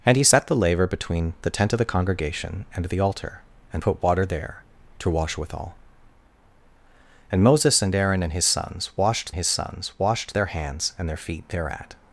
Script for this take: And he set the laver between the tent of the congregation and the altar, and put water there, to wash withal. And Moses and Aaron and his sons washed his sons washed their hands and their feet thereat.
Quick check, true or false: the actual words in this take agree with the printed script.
true